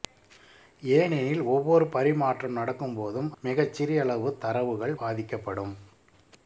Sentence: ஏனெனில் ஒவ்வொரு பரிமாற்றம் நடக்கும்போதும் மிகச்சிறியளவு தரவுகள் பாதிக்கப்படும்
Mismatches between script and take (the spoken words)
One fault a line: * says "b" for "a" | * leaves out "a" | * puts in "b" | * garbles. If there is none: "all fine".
all fine